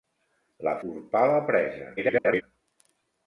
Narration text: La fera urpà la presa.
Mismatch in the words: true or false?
true